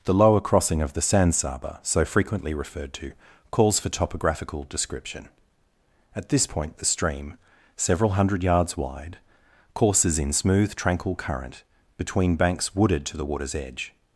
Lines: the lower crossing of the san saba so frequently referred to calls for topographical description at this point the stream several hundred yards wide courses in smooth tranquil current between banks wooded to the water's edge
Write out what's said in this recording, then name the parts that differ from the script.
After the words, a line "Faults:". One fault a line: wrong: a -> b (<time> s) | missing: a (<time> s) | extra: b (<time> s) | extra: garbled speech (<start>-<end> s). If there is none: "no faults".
the lower crossing of the san saba so frequently referred to calls for topographical description at this point the stream several hundred yards wide courses in smooth tranquil current between banks wooded to the water's edge
Faults:
no faults